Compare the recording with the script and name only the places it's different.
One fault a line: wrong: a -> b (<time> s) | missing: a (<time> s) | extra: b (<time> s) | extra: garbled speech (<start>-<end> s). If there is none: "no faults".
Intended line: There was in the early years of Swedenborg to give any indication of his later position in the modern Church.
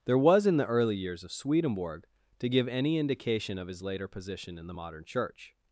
no faults